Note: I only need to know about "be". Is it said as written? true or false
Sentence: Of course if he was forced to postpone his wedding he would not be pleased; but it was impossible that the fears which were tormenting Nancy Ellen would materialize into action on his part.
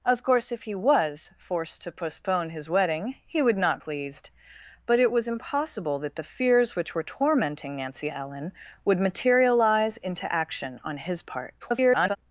false